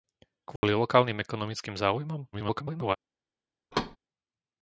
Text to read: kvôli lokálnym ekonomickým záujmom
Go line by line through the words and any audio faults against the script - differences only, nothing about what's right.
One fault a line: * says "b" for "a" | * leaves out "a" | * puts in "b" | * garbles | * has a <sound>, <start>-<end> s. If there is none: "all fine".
* has a dropout, 0.6-0.6 s
* garbles
* has a thud, 3.7-4.0 s